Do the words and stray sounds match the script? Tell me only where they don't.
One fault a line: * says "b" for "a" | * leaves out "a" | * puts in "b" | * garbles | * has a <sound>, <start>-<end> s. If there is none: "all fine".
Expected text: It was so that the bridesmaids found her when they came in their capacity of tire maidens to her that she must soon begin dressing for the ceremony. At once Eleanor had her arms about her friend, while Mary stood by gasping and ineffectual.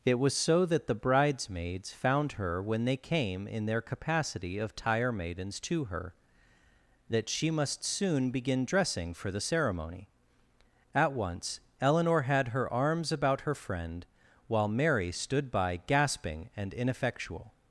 all fine